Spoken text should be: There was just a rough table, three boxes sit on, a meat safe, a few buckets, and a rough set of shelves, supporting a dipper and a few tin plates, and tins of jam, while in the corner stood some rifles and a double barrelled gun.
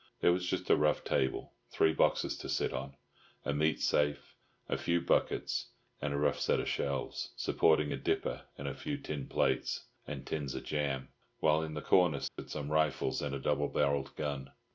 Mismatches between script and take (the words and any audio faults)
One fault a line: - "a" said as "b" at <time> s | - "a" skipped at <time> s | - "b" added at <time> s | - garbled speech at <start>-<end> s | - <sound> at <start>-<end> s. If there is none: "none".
- "to" added at 2.4 s
- dropout at 12.3-12.4 s